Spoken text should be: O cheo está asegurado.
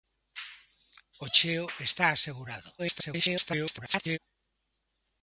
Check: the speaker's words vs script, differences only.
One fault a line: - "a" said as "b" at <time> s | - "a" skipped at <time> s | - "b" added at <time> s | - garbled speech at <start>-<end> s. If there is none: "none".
- garbled speech at 2.8-4.2 s